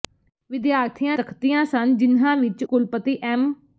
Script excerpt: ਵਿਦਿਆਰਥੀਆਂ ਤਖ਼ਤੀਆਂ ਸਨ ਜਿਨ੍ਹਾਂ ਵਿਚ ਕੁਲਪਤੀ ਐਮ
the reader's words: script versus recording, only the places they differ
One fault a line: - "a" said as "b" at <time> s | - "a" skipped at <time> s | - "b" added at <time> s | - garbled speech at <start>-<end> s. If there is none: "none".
none